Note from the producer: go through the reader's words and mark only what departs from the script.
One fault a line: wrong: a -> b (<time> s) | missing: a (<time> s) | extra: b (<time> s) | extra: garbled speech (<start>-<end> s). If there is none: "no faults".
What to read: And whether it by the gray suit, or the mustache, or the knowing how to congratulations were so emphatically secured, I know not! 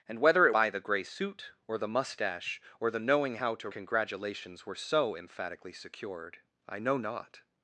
no faults